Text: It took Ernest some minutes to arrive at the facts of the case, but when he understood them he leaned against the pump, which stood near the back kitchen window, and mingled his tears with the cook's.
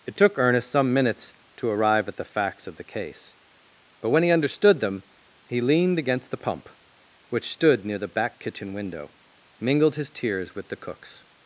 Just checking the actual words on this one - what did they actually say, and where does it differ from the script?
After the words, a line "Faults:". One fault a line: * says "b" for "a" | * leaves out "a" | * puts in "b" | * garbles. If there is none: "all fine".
It took Ernest some minutes to arrive at the facts of the case, but when he understood them he leaned against the pump, which stood near the back kitchen window, mingled his tears with the cook's.
Faults:
* leaves out "and"